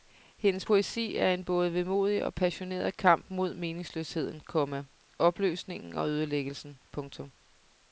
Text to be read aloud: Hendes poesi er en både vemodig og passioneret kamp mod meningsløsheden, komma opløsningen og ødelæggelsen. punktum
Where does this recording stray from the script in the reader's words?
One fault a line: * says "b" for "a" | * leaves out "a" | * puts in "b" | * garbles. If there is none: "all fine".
all fine